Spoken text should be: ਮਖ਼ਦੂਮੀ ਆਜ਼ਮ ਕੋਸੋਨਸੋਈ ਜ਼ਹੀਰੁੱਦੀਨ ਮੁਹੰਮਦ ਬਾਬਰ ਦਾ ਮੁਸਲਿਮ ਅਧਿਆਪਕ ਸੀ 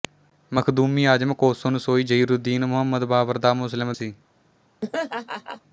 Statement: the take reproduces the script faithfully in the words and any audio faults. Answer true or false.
false